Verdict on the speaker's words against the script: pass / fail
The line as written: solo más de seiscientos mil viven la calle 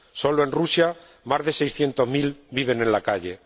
fail